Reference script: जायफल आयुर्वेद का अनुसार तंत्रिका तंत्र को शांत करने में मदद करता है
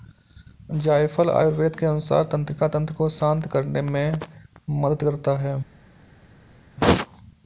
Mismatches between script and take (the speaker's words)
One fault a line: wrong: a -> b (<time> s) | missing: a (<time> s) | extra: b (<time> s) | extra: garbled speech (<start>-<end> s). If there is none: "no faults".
wrong: का -> के (1.8 s)